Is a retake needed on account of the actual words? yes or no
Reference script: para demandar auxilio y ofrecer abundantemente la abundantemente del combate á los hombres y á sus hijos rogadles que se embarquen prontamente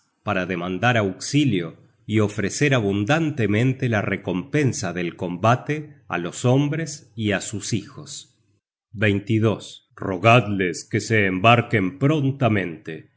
yes